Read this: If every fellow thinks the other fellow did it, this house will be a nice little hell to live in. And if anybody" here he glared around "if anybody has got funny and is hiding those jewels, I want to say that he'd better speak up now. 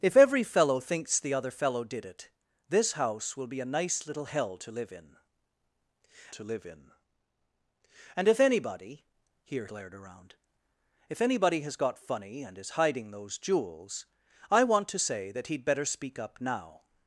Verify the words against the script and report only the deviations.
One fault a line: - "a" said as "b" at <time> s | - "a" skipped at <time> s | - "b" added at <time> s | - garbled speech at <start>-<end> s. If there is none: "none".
- "to live in" added at 6.3 s
- "he" skipped at 9.7 s